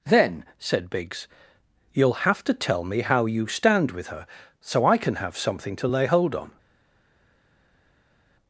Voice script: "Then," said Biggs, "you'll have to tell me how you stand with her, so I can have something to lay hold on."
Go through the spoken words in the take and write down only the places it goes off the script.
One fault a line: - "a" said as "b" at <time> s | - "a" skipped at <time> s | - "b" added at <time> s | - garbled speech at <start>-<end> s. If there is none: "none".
none